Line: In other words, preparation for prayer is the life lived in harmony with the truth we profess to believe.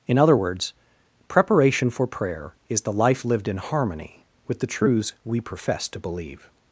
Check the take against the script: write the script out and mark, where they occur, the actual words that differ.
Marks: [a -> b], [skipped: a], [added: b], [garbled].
In other words, preparation for prayer is the life lived in harmony with the [truth -> truths] we profess to believe.